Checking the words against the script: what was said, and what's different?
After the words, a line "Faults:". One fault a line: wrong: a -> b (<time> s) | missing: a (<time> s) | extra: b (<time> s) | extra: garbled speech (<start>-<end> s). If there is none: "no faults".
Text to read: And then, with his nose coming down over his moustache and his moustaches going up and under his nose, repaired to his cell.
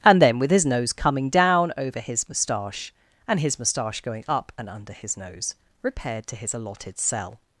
And then, with his nose coming down over his moustache and his moustache going up and under his nose, repaired to his allotted cell.
Faults:
wrong: moustaches -> moustache (3.6 s)
extra: allotted (6.5 s)